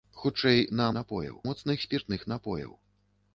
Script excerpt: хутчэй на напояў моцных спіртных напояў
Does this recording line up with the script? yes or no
yes